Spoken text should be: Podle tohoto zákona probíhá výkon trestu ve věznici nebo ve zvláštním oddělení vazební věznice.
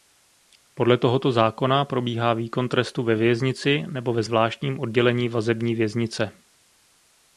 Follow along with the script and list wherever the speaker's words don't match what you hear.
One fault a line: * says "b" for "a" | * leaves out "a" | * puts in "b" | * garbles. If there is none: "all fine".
all fine